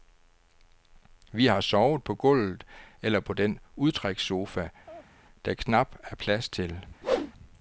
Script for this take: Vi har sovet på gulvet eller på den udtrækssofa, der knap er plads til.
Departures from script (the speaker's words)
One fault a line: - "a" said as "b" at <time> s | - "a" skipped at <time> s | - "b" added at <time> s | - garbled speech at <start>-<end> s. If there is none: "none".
none